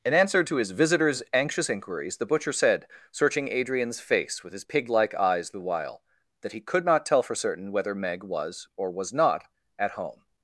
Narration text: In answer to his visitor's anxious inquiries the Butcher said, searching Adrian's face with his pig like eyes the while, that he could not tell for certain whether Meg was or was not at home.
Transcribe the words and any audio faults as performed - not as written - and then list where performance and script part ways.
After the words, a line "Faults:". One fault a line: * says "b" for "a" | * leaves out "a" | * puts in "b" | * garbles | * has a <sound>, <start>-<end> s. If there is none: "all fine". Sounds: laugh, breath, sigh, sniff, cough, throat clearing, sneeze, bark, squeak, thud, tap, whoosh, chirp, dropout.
In answer to his visitor's anxious inquiries the Butcher said, searching Adrian's face with his pig like eyes the while, that he could not tell for certain whether Meg was or was not at home.
Faults:
all fine